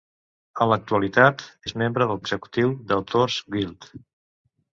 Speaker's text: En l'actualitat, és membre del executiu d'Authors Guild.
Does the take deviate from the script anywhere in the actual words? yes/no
no